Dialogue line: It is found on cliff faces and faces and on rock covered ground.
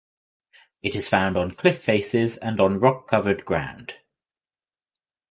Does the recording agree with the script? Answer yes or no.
no